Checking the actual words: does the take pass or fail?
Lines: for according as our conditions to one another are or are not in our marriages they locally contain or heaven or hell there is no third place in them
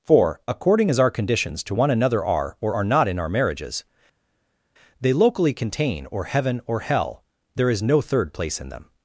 pass